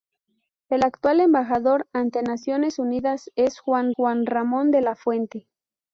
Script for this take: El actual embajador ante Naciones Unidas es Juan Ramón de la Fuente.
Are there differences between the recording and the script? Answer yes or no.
yes